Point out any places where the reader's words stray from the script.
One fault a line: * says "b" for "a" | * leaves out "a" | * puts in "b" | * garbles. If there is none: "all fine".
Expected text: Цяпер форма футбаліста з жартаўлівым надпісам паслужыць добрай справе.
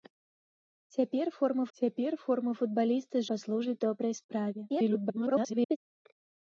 * puts in "цяпер форма"
* leaves out "жартаўлівым надпісам"
* garbles